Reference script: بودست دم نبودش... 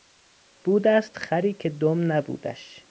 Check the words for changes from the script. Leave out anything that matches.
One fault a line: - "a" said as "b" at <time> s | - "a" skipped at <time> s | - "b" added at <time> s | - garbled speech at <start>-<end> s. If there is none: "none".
- "خری که" added at 1.2 s